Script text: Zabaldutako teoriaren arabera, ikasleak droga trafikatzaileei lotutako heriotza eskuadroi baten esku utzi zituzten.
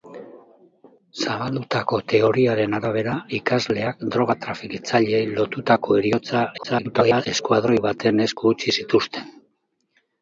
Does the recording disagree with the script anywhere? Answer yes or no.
yes